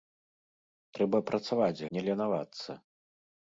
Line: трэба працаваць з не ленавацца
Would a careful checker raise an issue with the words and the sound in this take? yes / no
no